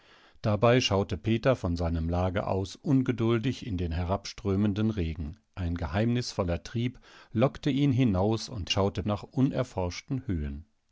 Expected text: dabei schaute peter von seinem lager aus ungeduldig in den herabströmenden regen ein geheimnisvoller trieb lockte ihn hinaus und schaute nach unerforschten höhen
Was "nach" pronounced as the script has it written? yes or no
yes